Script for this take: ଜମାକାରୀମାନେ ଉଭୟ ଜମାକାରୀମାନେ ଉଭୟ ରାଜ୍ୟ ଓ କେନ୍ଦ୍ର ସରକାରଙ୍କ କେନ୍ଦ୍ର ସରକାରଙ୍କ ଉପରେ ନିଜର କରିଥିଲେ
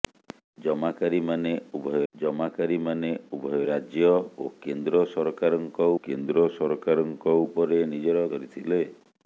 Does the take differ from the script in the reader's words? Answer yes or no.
no